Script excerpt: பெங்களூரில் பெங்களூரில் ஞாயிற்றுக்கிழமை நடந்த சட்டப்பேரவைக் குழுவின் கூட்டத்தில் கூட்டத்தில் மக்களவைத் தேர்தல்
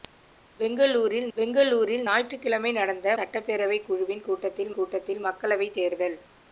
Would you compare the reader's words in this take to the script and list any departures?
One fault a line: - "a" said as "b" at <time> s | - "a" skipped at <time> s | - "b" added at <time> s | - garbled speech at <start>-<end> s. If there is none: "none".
none